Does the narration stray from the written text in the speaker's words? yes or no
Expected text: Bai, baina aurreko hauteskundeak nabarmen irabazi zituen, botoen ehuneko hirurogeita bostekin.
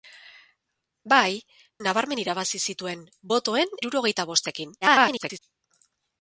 yes